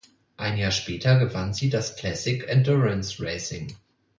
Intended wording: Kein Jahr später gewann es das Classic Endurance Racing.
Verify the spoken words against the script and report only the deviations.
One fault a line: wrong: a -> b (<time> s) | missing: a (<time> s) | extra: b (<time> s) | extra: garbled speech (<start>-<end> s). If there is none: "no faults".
wrong: Kein -> Ein (0.3 s)
wrong: es -> sie (1.5 s)